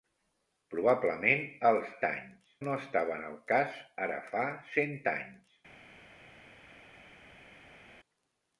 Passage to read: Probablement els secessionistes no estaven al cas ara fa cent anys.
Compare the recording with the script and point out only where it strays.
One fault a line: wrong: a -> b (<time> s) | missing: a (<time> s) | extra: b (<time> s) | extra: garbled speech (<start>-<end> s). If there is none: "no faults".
wrong: secessionistes -> anys (2.1 s)